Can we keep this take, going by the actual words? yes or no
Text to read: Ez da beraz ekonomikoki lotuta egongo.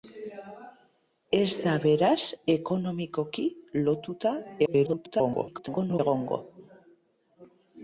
no